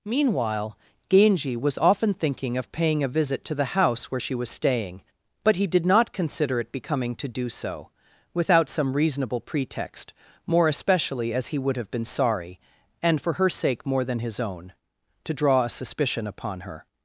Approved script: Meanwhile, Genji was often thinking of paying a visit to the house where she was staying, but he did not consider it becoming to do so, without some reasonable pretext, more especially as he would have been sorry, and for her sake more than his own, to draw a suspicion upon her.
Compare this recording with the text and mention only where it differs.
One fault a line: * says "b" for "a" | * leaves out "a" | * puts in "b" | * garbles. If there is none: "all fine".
all fine